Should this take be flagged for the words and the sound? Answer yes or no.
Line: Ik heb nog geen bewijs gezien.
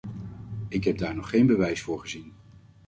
yes